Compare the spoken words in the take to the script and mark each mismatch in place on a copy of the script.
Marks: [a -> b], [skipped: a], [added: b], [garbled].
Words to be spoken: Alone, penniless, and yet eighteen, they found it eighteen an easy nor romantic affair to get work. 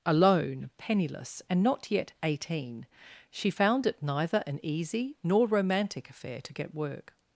Alone, penniless, and [added: not] yet eighteen, [they -> she] found it [eighteen -> neither] an easy nor romantic affair to get work.